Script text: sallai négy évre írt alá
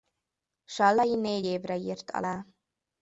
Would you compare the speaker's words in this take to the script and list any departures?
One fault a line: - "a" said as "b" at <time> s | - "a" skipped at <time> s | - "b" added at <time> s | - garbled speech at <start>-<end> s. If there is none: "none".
none